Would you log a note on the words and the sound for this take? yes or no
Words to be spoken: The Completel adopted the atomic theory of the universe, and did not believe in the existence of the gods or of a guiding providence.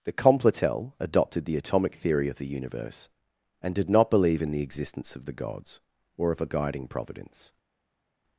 no